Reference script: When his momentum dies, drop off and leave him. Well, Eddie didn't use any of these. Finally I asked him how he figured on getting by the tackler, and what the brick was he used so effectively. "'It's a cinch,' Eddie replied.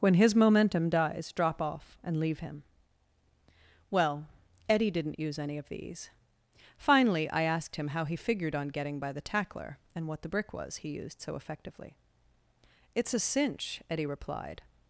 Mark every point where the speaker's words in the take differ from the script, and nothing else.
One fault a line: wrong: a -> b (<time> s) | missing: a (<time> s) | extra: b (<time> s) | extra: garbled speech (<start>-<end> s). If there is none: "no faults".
no faults